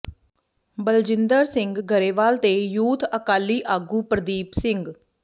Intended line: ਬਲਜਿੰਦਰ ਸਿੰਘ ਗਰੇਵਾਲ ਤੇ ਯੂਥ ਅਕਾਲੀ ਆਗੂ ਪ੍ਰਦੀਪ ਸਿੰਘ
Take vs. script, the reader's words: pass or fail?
pass